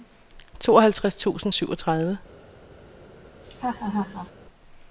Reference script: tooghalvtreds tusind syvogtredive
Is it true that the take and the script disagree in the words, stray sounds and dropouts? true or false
true